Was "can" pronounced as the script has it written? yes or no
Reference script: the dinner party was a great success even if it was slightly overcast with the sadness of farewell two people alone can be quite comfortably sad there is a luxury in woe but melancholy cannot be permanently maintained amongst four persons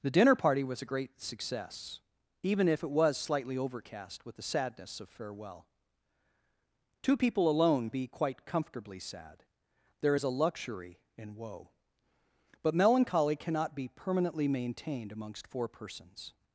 no